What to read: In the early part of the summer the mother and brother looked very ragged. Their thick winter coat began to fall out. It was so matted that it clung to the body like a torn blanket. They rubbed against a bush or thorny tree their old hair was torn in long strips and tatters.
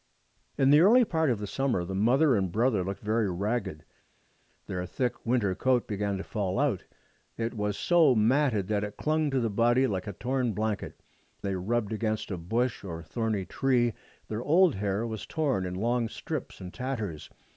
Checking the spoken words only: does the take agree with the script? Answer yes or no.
yes